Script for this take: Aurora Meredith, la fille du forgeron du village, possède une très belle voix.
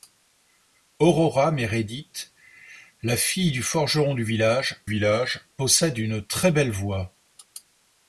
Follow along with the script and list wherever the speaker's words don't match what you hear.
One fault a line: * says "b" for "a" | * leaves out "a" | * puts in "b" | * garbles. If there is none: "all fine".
* puts in "village"